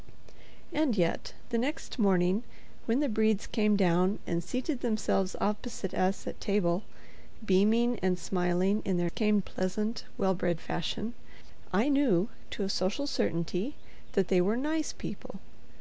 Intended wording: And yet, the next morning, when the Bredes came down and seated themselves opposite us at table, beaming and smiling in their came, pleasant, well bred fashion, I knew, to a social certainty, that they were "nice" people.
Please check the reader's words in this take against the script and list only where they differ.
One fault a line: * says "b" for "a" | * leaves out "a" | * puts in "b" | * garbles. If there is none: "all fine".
all fine